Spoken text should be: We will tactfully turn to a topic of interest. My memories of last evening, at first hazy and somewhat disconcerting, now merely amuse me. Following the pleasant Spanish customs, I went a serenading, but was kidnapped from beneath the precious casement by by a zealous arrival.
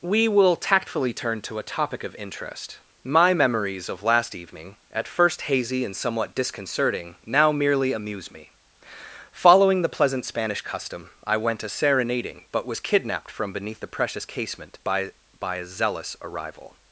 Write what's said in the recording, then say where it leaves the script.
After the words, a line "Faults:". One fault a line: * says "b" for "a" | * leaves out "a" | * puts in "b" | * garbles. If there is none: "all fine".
We will tactfully turn to a topic of interest. My memories of last evening, at first hazy and somewhat disconcerting, now merely amuse me. Following the pleasant Spanish custom, I went a serenading, but was kidnapped from beneath the precious casement by by a zealous arrival.
Faults:
* says "custom" for "customs"